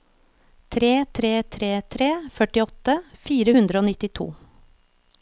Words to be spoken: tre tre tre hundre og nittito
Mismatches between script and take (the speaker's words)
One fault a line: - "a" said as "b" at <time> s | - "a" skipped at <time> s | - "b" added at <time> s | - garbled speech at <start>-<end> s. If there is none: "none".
- "tre førtiåtte fire" added at 1.9 s